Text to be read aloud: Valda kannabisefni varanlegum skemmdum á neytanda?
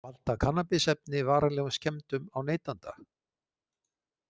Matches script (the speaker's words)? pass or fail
pass